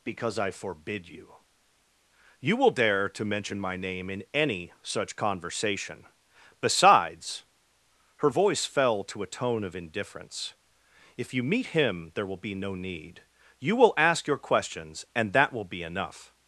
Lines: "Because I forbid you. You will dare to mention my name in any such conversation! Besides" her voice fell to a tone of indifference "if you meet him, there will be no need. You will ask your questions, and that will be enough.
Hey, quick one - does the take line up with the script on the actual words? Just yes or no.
yes